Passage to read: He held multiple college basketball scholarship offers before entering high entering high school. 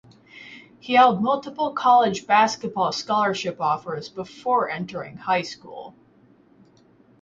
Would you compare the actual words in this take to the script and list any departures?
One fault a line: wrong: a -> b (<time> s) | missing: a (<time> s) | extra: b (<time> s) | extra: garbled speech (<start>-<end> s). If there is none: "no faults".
missing: entering high (5.4 s)